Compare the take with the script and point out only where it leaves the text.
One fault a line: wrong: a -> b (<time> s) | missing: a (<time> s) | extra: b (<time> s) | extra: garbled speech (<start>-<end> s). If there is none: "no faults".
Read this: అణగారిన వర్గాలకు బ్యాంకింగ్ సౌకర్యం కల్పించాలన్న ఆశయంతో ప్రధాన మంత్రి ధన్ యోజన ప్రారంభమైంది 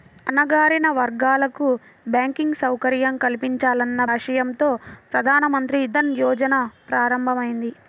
no faults